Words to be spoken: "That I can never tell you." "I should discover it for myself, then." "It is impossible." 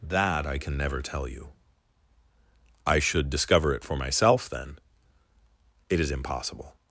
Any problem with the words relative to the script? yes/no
no